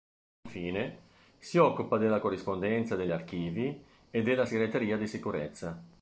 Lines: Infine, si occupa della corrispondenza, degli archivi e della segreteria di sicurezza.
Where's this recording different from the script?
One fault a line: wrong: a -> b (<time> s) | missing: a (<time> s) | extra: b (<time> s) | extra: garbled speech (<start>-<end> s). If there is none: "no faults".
no faults